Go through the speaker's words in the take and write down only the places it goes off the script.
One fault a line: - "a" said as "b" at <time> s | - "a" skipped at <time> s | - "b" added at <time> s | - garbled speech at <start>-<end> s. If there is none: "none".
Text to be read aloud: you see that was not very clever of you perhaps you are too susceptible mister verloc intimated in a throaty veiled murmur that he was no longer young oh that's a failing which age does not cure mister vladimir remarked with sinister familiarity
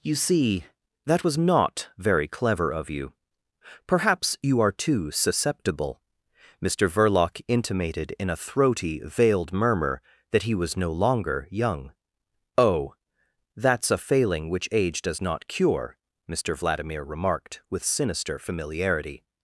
none